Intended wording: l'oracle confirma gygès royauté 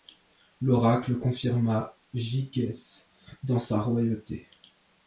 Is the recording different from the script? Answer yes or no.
yes